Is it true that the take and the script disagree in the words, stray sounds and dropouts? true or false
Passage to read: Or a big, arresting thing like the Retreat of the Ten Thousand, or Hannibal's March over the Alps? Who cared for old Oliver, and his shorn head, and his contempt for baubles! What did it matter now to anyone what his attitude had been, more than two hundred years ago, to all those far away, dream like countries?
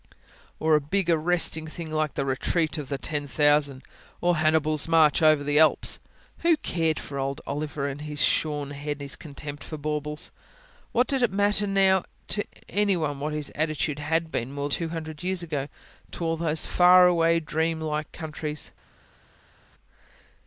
true